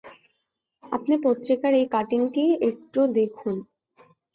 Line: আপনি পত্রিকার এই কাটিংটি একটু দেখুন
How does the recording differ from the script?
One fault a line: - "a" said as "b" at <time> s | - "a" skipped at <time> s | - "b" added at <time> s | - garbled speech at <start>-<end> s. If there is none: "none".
none